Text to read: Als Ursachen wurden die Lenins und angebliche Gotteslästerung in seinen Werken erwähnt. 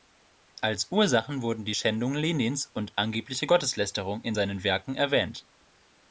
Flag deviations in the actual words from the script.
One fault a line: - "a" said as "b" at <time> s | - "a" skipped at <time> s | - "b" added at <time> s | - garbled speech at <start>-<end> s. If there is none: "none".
- "Schändung" added at 1.7 s